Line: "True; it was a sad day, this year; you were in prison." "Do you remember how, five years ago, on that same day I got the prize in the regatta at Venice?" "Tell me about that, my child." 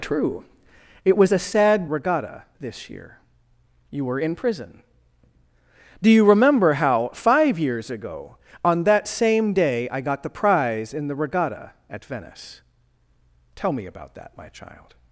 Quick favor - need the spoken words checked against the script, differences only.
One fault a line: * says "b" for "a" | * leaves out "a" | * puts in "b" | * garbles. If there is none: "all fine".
* says "regatta" for "day"